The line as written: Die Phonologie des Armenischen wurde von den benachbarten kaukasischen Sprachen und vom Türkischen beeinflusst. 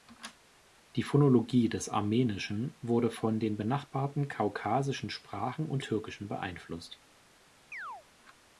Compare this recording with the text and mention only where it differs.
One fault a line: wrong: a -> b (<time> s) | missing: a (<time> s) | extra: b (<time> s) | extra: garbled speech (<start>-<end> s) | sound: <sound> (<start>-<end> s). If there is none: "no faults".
missing: vom (5.8 s)
sound: chirp (7.7-8.1 s)